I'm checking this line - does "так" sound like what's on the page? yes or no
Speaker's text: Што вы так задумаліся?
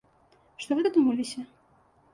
no